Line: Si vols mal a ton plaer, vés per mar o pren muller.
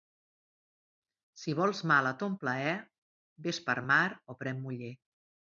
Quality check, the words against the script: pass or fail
pass